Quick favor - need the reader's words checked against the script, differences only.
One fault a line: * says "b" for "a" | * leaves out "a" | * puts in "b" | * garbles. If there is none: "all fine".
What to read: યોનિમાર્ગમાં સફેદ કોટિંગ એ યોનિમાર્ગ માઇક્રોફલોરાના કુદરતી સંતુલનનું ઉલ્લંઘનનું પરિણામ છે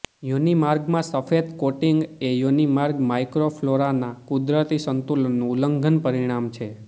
all fine